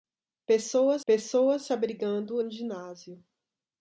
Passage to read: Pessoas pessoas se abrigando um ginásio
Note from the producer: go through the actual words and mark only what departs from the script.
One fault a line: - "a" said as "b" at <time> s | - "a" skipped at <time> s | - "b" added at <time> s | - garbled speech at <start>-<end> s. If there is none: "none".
none